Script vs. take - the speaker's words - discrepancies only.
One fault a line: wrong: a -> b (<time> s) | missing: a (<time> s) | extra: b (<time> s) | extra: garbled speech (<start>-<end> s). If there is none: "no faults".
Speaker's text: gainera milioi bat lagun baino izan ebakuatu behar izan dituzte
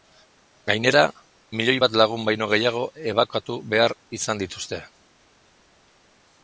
wrong: izan -> gehiago (2.5 s)